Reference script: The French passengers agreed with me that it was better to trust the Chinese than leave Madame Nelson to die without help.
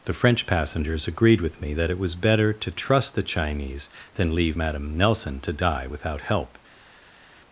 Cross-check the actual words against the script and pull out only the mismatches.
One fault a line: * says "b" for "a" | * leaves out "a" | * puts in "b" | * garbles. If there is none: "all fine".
all fine